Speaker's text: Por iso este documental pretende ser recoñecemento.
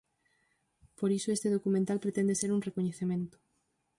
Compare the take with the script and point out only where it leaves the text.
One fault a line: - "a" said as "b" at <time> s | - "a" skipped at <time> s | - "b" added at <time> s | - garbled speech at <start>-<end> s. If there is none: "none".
- "un" added at 2.5 s